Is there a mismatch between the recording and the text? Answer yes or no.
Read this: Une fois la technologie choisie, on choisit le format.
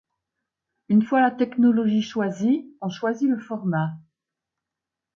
no